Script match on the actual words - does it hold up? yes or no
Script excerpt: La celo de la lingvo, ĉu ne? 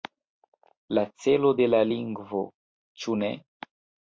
yes